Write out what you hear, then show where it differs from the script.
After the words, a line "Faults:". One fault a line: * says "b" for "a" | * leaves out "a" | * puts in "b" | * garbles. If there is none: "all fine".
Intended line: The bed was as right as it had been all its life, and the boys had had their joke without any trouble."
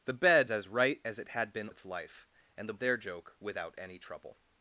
The bed as right as it had been its life, and the their joke without any trouble."
Faults:
* leaves out "was"
* leaves out "all"
* leaves out "boys had had"